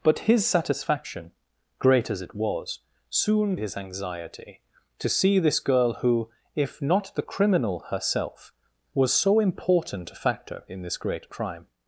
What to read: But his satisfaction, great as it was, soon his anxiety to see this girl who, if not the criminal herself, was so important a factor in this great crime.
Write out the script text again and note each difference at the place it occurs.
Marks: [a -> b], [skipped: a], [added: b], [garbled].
But his satisfaction, great as it was, soon his anxiety to see this girl who, if not the criminal herself, was so important a factor in this great crime.